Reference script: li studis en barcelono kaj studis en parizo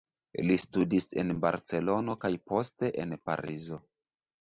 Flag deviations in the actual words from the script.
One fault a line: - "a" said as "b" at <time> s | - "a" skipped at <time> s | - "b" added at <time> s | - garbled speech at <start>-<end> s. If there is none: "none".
- "studis" said as "poste" at 2.5 s